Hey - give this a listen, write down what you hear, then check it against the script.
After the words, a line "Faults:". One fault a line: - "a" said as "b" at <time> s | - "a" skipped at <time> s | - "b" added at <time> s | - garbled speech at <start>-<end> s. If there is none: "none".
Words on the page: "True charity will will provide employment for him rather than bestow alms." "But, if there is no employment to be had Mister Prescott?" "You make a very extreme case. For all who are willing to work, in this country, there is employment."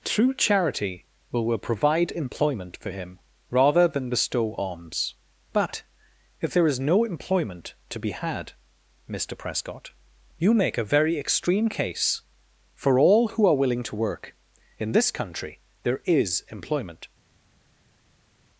"True charity will will provide employment for him rather than bestow alms." "But, if there is no employment to be had Mister Prescott?" "You make a very extreme case. For all who are willing to work, in this country, there is employment."
Faults:
none